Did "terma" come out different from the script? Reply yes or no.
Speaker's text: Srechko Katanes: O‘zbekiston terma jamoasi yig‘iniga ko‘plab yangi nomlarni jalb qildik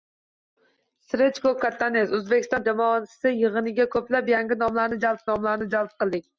yes